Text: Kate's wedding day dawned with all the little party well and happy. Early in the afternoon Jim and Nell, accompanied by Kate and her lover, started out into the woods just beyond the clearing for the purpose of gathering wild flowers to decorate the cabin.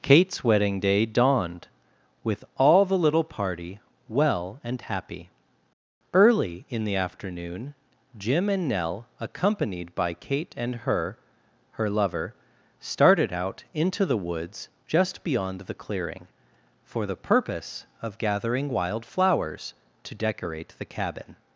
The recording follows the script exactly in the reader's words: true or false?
false